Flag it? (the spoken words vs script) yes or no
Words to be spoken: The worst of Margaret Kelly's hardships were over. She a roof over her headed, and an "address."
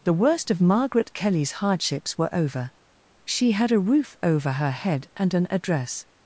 yes